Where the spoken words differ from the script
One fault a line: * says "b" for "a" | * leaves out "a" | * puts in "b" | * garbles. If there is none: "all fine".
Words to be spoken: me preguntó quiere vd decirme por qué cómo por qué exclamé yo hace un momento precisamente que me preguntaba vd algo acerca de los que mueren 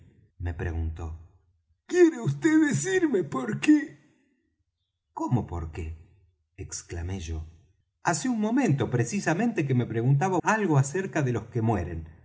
* leaves out "vd"